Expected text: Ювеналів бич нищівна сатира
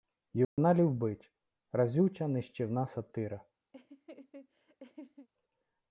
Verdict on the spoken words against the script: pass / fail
fail